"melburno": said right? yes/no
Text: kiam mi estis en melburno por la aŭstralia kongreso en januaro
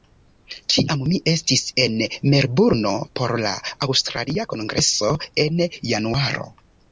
yes